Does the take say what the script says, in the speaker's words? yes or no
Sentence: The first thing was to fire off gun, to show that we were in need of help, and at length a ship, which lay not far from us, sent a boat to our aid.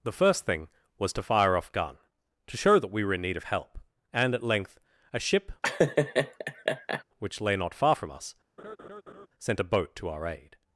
yes